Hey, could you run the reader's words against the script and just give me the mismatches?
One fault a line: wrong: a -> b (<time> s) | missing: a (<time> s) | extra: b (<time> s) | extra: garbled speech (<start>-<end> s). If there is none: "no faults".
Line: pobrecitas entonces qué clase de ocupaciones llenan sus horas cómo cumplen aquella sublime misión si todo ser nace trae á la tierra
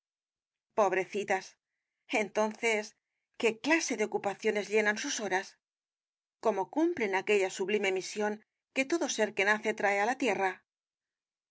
wrong: si -> que (8.7 s)
extra: que (9.3 s)